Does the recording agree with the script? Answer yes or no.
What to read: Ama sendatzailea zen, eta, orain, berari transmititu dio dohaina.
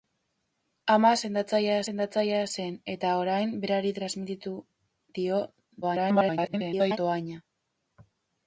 no